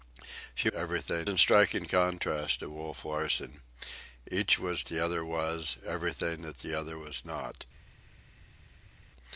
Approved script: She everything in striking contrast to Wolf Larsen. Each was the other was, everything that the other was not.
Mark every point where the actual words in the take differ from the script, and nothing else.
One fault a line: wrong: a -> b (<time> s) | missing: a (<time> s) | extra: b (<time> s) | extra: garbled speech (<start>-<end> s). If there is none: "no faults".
no faults